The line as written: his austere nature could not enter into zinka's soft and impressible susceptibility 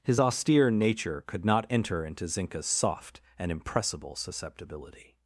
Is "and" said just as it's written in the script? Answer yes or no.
yes